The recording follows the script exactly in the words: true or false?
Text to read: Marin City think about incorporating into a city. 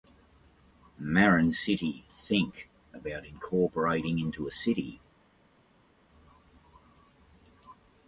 true